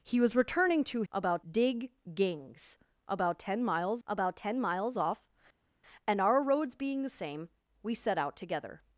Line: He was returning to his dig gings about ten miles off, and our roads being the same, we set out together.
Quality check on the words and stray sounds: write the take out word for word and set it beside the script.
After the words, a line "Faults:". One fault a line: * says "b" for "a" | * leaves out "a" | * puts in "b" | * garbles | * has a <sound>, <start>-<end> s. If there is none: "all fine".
He was returning to about dig gings about ten miles about ten miles off, and our roads being the same, we set out together.
Faults:
* says "about" for "his"
* puts in "about ten miles"